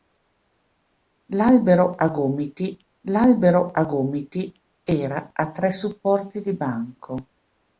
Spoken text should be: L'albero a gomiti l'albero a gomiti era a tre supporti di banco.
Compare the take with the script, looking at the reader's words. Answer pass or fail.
pass